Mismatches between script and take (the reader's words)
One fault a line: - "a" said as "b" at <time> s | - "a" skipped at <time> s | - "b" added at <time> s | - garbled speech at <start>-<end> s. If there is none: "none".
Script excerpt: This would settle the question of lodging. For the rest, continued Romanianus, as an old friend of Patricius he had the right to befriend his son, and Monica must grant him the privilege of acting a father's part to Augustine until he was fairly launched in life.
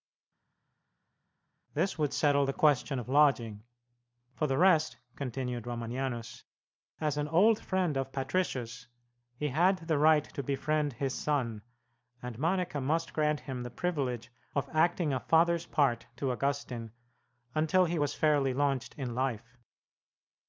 none